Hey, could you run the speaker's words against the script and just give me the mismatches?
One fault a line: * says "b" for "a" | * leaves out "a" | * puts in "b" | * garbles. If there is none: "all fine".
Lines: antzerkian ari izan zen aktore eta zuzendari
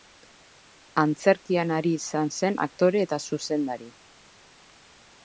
all fine